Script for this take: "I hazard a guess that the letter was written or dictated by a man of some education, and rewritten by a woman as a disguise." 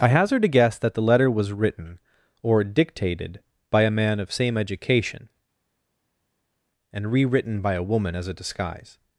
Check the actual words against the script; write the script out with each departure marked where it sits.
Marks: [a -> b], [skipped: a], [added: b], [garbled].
"I hazard a guess that the letter was written or dictated by a man of [some -> same] education, and rewritten by a woman as a disguise."